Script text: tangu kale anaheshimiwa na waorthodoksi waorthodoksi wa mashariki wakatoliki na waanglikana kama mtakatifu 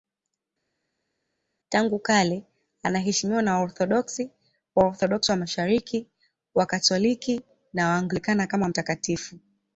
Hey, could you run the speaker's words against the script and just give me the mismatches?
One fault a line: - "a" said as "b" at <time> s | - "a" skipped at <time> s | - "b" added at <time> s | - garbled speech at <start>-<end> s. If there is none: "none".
none